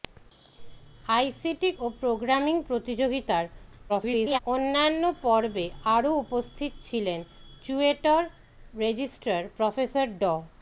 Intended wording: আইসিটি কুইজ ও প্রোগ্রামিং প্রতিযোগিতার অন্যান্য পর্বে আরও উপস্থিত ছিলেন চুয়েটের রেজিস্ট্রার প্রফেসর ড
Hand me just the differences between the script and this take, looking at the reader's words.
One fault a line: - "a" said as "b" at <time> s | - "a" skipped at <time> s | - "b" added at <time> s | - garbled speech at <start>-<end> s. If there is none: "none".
- "কুইজ" skipped at 1.7 s
- garbled speech at 3.9-4.4 s